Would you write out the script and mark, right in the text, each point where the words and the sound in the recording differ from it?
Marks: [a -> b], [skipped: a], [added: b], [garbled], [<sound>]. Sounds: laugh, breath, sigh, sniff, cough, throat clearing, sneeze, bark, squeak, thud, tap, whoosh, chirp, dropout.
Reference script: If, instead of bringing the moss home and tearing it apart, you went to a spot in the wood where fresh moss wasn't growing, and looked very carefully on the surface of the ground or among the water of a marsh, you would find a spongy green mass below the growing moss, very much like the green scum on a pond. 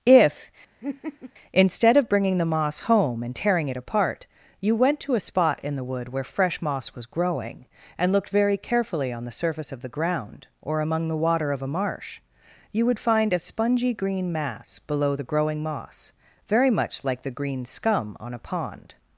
If, [laugh] instead of bringing the moss home and tearing it apart, you went to a spot in the wood where fresh moss [wasn't -> was] growing, and looked very carefully on the surface of the ground or among the water of a marsh, you would find a spongy green mass below the growing moss, very much like the green scum on a pond.